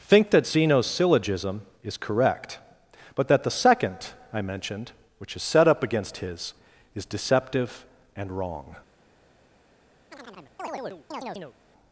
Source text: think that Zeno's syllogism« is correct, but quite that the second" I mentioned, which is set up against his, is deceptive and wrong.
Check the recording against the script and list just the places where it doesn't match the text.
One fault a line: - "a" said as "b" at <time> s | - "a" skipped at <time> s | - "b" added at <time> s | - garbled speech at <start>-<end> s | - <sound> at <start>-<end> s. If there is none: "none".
- "quite" skipped at 3.3 s
- chirp at 10.1-11.6 s